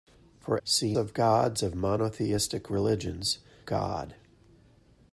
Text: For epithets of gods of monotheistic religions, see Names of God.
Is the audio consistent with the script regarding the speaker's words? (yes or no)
no